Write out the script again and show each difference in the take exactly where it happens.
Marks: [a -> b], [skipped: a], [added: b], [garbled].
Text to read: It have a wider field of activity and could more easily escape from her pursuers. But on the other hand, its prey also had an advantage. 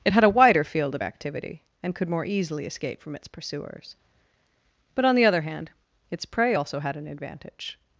It [have -> had] a wider field of activity and could more easily escape from [her -> its] pursuers. But on the other hand, its prey also had an advantage.